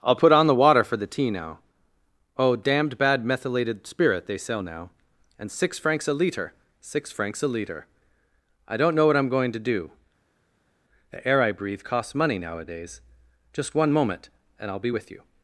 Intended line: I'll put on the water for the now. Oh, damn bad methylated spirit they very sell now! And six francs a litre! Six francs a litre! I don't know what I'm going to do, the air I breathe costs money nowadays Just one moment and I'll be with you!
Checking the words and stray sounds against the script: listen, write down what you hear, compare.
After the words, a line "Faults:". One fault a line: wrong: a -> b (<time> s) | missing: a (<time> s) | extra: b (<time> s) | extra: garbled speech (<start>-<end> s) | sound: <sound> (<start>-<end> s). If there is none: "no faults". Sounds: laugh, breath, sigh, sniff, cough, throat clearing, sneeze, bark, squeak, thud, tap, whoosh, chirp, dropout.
I'll put on the water for the tea now. Oh, damned bad methylated spirit they sell now! And six francs a litre! Six francs a litre! I don't know what I'm going to do, the air I breathe costs money nowadays Just one moment and I'll be with you!
Faults:
extra: tea (1.1 s)
wrong: damn -> damned (2.5 s)
missing: very (4.4 s)